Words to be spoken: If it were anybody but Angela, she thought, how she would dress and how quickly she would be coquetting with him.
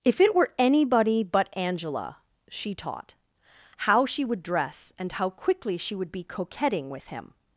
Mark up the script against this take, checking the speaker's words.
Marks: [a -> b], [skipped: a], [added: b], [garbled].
If it were anybody but Angela, she [thought, -> taught] how she would dress and how quickly she would be coquetting with him.